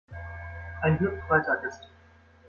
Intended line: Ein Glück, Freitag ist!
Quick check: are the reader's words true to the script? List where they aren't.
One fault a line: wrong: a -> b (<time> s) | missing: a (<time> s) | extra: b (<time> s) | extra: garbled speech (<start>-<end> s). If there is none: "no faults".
no faults